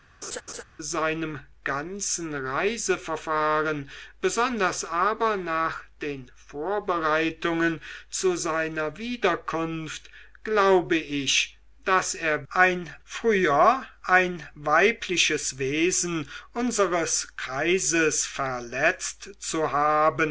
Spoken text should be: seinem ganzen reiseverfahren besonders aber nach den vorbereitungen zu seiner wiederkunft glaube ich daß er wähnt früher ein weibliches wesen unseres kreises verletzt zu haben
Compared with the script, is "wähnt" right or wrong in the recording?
wrong